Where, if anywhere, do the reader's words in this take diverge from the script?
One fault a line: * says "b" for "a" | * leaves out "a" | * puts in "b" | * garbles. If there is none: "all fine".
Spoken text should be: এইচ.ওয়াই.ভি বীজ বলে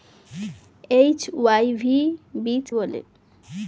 all fine